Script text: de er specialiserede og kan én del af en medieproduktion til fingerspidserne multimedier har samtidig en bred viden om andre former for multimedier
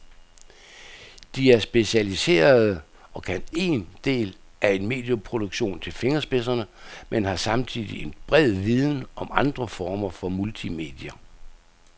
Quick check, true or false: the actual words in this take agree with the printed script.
false